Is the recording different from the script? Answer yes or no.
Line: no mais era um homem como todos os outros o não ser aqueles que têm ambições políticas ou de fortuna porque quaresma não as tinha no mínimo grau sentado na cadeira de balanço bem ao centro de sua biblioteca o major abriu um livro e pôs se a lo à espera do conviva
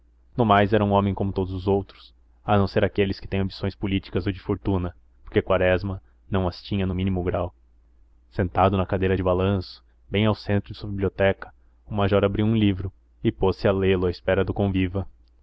yes